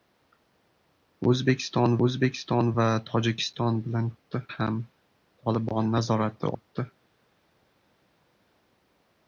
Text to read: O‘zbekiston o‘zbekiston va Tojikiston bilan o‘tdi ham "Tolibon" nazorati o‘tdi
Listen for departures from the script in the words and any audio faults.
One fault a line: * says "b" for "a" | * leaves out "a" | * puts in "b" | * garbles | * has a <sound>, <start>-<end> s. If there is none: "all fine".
all fine